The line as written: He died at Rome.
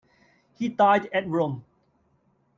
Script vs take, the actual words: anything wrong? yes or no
no